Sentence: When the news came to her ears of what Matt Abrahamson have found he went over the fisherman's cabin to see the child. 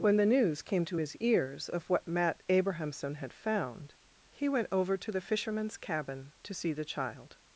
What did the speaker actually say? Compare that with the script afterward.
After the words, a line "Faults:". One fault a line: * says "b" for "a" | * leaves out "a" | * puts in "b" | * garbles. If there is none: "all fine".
When the news came to his ears of what Matt Abrahamson had found he went over to the fisherman's cabin to see the child.
Faults:
* says "his" for "her"
* says "had" for "have"
* puts in "to"